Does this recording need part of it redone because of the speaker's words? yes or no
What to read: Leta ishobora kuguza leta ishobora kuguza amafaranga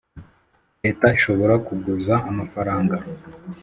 yes